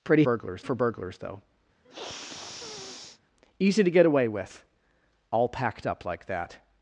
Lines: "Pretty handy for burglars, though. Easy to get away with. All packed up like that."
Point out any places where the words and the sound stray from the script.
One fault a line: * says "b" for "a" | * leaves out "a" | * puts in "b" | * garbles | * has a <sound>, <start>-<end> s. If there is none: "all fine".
* says "burglars" for "handy"
* has a sniff, 1.8-3.2 s